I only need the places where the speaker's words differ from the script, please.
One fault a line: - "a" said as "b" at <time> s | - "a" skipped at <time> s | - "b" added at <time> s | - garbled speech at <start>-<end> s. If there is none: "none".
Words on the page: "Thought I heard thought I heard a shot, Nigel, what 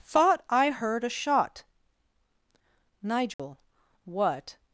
- "thought I heard" skipped at 1.0 s